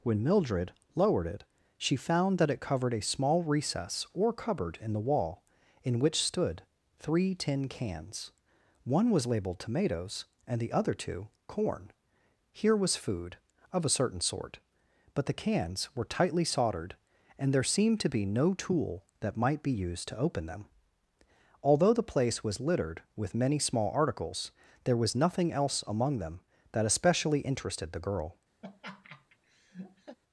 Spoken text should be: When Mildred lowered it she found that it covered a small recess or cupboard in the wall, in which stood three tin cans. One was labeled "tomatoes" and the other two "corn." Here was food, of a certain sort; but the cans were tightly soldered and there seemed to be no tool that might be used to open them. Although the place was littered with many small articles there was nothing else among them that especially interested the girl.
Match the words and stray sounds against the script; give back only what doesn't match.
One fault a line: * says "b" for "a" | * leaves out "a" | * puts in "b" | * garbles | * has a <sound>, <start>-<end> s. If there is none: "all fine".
* has a laugh, 28.6-30.2 s